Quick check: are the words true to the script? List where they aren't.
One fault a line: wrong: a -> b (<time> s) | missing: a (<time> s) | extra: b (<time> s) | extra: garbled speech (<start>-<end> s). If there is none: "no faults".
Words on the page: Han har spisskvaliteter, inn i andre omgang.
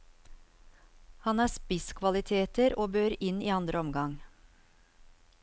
extra: og bør (2.8 s)